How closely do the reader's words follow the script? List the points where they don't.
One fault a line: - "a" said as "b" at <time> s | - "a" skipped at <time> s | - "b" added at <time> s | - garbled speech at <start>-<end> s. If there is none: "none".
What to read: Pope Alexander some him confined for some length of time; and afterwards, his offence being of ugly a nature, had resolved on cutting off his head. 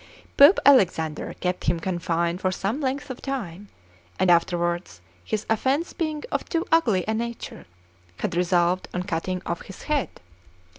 - "some" said as "kept" at 1.4 s
- "too" added at 6.5 s